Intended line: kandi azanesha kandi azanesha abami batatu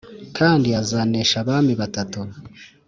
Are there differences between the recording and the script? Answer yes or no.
yes